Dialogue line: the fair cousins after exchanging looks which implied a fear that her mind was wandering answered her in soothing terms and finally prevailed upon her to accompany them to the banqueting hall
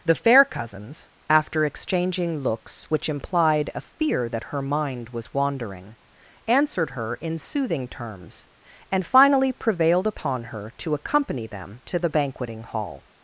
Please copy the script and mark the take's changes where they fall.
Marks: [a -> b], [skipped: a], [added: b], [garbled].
the fair cousins after exchanging looks which implied a fear that her mind was wandering answered her in soothing terms and finally prevailed upon her to accompany them to the banqueting hall